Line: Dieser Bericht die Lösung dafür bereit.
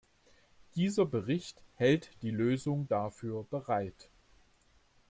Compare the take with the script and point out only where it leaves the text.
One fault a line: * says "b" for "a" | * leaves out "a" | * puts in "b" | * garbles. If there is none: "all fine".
* puts in "hält"